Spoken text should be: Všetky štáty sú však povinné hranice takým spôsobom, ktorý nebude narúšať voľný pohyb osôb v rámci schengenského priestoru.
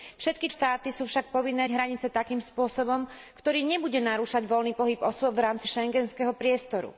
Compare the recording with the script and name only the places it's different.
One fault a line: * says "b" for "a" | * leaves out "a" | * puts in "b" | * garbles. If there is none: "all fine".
all fine